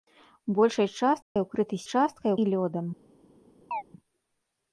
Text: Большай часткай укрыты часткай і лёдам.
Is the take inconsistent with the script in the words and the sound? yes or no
yes